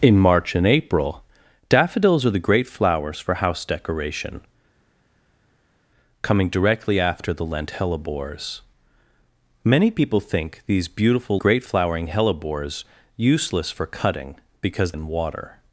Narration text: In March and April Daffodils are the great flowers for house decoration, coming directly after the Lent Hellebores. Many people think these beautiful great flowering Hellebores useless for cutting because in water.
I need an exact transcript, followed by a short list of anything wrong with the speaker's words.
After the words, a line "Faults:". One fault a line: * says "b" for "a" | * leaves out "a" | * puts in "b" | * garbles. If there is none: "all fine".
In March and April Daffodils are the great flowers for house decoration, coming directly after the Lent Hellebores. Many people think these beautiful great flowering Hellebores useless for cutting because in water.
Faults:
all fine